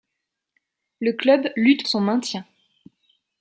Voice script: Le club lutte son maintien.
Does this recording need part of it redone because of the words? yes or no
no